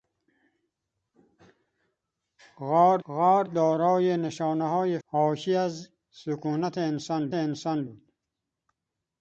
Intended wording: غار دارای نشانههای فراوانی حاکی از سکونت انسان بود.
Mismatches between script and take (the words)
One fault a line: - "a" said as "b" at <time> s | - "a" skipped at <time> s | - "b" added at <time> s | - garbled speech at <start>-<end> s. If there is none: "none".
- "غار" added at 3.1 s
- "فراوانی" skipped at 5.0 s
- "انسان" added at 7.3 s